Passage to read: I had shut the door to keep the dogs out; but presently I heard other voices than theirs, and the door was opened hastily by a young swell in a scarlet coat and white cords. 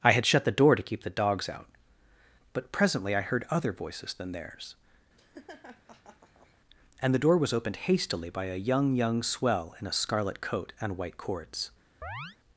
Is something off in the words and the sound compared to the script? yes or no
yes